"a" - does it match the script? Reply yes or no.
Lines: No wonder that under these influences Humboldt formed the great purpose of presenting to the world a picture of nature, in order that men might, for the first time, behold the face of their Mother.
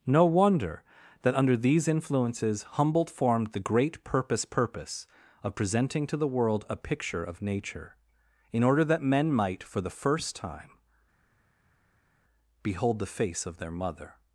yes